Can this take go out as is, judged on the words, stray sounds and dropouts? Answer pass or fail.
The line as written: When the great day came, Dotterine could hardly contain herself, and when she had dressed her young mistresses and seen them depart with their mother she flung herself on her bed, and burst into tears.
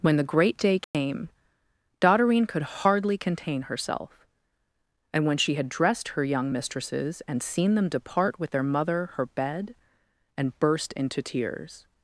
fail